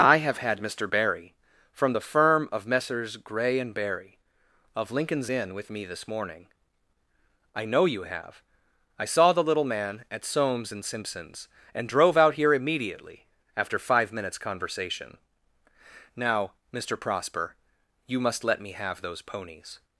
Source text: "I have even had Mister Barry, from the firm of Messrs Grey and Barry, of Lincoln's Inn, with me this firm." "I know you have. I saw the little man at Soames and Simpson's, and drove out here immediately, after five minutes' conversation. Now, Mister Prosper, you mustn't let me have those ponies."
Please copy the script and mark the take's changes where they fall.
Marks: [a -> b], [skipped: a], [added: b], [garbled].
"I have [skipped: even] had Mister Barry, from the firm of Messrs Grey and Barry, of Lincoln's Inn, with me this [firm." -> morning] "I know you have. I saw the little man at Soames and Simpson's, and drove out here immediately, after five minutes' conversation. Now, Mister Prosper, you [mustn't -> must] let me have those ponies."